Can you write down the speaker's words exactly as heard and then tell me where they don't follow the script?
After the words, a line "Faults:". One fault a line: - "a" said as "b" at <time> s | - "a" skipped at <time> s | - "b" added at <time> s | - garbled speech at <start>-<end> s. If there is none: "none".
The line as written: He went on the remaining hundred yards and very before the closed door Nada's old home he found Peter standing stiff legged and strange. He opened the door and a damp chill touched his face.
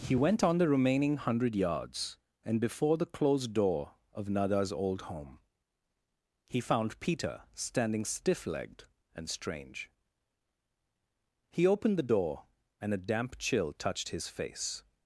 He went on the remaining hundred yards and before the closed door of Nada's old home he found Peter standing stiff legged and strange. He opened the door and a damp chill touched his face.
Faults:
- "very" skipped at 2.6 s
- "of" added at 4.1 s